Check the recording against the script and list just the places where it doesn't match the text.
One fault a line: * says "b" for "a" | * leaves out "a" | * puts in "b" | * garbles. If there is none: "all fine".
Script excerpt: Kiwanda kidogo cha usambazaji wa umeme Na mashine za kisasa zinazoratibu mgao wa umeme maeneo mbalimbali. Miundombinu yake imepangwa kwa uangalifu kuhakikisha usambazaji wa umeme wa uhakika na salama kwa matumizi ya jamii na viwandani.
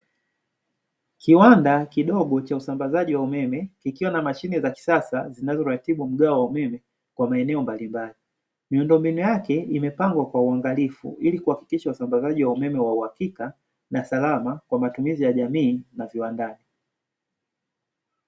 * puts in "Kikiwa"
* puts in "kwa"
* puts in "ili"